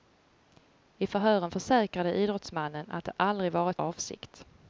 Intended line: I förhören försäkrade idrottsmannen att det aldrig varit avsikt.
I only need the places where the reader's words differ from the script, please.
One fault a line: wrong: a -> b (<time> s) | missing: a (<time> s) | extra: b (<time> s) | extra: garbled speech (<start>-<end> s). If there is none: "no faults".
no faults